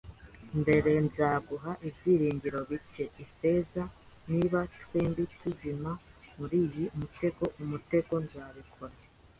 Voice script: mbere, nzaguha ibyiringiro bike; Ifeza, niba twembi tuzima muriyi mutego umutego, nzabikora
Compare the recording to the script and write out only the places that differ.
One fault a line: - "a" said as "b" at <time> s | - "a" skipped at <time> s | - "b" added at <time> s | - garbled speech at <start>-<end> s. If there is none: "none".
none